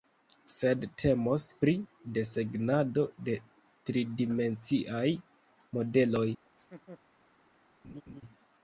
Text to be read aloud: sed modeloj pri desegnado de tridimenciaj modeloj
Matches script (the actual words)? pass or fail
fail